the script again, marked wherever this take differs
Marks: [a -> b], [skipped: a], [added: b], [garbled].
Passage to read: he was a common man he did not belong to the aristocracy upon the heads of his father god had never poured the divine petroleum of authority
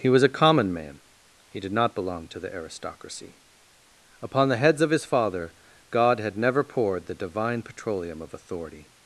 he was a common man he did not belong to the aristocracy upon the heads of his father god had never poured the divine petroleum of authority